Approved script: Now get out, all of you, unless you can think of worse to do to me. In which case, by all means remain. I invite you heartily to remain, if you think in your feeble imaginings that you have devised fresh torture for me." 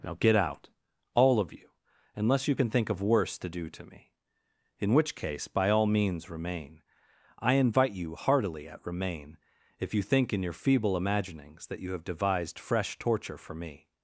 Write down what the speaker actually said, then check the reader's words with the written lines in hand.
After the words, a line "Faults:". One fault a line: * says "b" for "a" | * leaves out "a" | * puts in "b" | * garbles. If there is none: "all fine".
Now get out, all of you, unless you can think of worse to do to me. In which case, by all means remain. I invite you heartily at remain, if you think in your feeble imaginings that you have devised fresh torture for me."
Faults:
* says "at" for "to"